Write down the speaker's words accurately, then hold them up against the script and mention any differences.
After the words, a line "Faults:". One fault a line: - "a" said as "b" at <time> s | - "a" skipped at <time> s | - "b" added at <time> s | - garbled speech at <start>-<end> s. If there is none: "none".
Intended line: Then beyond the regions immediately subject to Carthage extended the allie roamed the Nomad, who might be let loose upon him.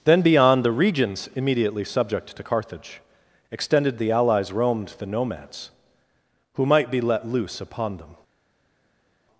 Then beyond the regions immediately subject to Carthage extended the allies roamed the Nomads, who might be let loose upon them.
Faults:
- "allie" said as "allies" at 4.1 s
- "Nomad" said as "Nomads" at 5.0 s
- "him" said as "them" at 8.0 s